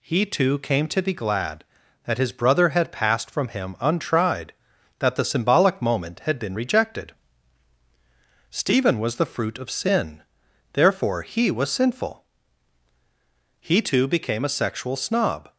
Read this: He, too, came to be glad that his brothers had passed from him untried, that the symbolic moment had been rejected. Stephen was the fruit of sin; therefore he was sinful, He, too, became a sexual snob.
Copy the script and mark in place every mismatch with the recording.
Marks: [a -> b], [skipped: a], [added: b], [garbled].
He, too, came to be glad that his [brothers -> brother] had passed from him untried, that the symbolic moment had been rejected. Stephen was the fruit of sin; therefore he was sinful, He, too, became a sexual snob.